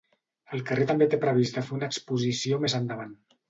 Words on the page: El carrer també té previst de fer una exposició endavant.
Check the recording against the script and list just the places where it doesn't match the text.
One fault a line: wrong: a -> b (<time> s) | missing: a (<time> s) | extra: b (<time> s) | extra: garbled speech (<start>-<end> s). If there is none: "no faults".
extra: més (2.7 s)